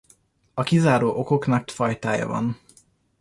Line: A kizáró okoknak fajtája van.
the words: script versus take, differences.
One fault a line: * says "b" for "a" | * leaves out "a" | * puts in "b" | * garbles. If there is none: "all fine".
all fine